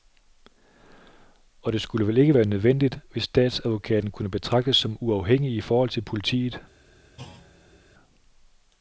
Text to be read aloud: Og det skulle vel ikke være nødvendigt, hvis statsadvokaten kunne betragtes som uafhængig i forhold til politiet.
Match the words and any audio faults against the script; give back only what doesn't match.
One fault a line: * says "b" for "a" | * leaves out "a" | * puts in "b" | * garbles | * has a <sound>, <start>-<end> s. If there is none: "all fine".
* has a thud, 7.2-7.8 s